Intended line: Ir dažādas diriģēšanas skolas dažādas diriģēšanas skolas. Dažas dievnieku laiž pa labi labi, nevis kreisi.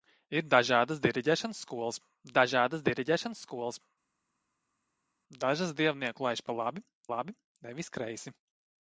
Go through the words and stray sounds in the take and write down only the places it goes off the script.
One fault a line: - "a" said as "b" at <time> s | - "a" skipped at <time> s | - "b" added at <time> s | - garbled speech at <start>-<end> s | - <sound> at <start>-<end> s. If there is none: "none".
none